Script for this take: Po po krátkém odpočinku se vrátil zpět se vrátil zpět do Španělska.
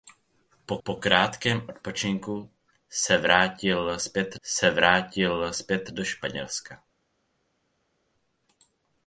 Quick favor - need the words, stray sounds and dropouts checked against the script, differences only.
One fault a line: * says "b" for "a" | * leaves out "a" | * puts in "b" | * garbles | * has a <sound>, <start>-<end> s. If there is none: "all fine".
all fine